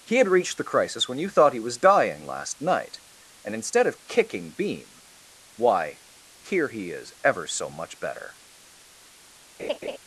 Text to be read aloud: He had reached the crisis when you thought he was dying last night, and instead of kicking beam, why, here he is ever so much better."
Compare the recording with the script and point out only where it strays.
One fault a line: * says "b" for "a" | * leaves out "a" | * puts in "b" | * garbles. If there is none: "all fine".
all fine